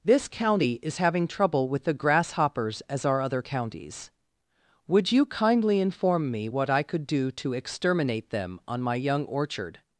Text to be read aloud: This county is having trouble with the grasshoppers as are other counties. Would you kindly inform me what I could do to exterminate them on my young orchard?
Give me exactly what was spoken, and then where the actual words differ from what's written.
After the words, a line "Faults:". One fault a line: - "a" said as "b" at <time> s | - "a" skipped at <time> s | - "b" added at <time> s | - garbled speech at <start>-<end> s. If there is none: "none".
This county is having trouble with the grasshoppers as are other counties. Would you kindly inform me what I could do to exterminate them on my young orchard?
Faults:
none